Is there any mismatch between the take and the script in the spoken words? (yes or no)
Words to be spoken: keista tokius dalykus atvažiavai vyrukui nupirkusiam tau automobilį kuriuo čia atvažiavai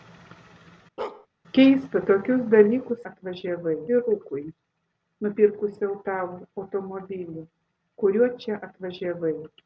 no